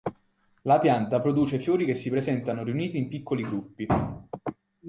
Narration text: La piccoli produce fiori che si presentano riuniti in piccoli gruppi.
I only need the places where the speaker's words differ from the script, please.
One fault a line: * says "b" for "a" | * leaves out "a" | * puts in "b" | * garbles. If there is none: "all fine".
* says "pianta" for "piccoli"